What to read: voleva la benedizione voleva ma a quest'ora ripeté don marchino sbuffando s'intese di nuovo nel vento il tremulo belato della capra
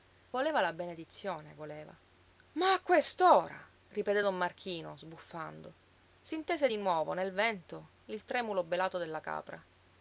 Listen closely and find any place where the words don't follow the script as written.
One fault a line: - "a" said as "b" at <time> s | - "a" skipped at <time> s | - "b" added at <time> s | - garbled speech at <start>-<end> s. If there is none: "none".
none